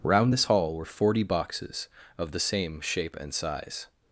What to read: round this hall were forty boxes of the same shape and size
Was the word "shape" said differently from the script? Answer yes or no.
no